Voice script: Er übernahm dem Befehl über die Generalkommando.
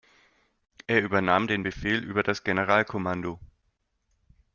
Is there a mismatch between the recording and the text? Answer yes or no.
yes